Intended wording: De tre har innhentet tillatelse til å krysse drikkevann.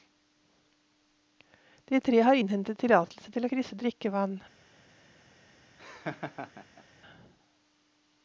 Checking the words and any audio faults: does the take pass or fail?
fail